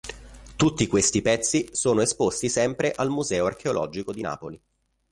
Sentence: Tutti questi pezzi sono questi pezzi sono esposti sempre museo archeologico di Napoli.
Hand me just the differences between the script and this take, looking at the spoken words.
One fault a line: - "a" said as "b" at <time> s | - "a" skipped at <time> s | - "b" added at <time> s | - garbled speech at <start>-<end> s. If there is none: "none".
- "questi pezzi sono" skipped at 2.0 s
- "al" added at 2.9 s